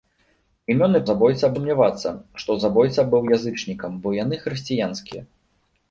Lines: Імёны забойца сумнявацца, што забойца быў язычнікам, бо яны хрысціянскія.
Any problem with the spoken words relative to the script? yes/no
no